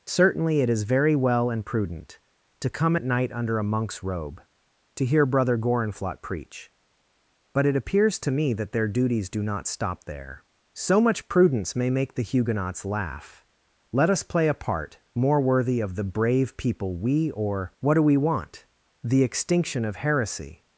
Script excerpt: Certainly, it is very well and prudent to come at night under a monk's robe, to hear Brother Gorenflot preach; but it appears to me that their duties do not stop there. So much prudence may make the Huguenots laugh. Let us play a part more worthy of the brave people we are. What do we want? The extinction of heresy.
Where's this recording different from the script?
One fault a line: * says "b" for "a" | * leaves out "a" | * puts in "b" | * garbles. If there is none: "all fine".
* says "or" for "are"